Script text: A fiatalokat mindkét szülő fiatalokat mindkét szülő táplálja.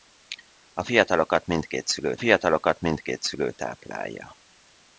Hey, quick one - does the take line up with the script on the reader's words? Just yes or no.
yes